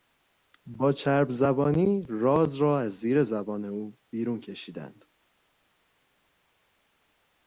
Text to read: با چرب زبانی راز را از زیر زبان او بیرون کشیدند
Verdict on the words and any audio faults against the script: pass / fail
pass